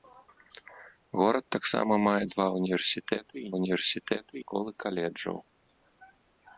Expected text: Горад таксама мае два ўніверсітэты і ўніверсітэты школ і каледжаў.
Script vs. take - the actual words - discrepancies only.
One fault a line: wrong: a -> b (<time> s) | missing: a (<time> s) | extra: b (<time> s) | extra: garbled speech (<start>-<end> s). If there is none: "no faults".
no faults